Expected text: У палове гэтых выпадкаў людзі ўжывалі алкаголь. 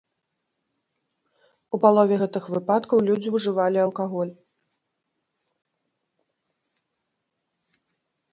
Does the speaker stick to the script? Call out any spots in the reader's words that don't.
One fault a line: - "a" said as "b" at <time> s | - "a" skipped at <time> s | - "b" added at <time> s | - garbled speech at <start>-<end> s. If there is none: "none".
none